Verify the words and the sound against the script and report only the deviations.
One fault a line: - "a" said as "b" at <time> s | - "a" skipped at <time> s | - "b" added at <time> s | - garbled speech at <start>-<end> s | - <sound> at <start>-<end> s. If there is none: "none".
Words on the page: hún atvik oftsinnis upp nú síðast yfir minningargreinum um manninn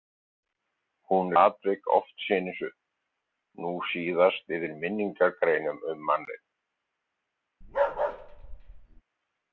- bark at 7.6-9.0 s